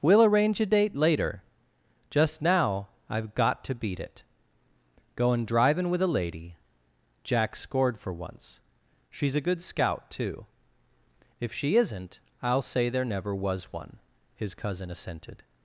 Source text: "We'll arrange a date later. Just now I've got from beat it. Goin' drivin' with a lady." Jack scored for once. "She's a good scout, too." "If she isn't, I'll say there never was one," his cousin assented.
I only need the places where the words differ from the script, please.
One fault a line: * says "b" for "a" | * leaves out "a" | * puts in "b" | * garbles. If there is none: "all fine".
* says "to" for "from"